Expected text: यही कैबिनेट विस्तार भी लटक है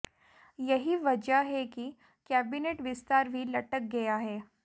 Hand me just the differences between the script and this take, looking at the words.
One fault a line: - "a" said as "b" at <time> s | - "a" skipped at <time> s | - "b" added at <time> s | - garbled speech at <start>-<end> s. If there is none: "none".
- "वजह है कि" added at 0.9 s
- "गया" added at 3.9 s